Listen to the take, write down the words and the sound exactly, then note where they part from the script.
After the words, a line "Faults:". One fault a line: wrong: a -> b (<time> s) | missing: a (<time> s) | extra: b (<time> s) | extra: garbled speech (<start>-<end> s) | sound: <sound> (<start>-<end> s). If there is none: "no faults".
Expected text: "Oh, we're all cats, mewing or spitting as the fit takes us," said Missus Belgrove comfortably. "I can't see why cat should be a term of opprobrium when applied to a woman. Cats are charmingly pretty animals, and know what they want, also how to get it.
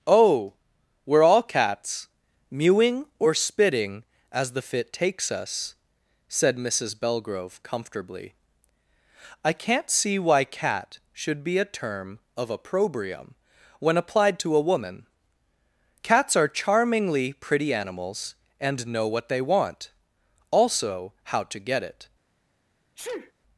"Oh, we're all cats, mewing or spitting as the fit takes us," said Missus Belgrove comfortably. "I can't see why cat should be a term of opprobrium when applied to a woman. Cats are charmingly pretty animals, and know what they want, also how to get it.
Faults:
sound: sneeze (23.0-23.3 s)